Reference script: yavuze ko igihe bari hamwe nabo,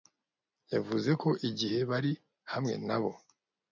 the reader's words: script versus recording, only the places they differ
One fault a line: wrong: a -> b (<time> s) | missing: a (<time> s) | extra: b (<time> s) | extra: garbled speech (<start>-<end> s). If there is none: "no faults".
no faults